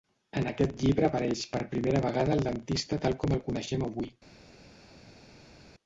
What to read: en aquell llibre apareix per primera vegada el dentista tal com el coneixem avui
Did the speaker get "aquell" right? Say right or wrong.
wrong